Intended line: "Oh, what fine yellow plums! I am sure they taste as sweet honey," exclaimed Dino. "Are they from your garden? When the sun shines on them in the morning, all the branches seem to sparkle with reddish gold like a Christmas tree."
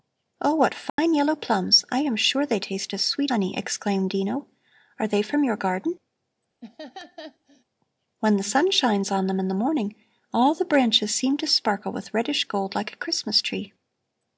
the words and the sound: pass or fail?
fail